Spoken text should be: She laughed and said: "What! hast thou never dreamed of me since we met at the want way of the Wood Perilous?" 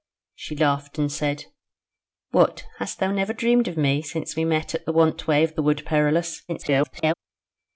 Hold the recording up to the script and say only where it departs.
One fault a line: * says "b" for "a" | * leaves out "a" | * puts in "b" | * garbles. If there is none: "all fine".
* garbles